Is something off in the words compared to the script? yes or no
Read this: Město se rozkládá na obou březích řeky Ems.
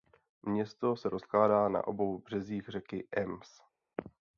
no